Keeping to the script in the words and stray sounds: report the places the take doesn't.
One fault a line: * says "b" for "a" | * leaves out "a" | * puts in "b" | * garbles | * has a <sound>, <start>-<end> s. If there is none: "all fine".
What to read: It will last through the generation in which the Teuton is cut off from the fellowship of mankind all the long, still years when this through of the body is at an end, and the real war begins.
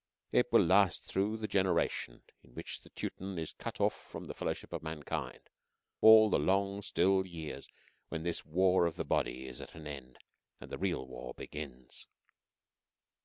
* says "war" for "through"